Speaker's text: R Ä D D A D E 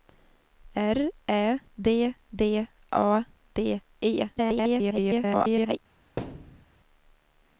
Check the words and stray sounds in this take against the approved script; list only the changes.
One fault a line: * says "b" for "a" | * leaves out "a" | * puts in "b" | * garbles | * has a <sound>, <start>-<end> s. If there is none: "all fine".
* garbles
* has a thud, 6.2-6.7 s